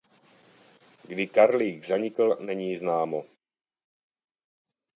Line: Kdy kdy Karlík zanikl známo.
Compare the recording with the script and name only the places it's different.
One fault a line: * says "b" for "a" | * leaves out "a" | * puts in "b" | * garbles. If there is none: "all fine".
* leaves out "kdy"
* puts in "není"